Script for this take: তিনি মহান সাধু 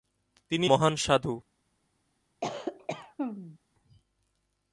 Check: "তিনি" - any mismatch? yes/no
no